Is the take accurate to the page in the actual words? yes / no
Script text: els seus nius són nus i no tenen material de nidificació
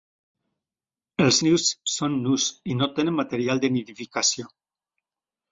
no